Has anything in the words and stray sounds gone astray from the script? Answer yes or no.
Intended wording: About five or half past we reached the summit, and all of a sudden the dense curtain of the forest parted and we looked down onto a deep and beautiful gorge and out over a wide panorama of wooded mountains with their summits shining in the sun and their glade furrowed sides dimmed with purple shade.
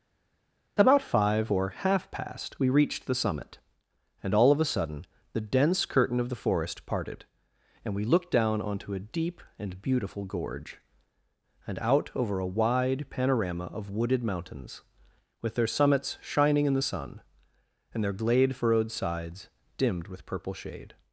no